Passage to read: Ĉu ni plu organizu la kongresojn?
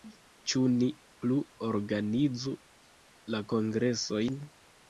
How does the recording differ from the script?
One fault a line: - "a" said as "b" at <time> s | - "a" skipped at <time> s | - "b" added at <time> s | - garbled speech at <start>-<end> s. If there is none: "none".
none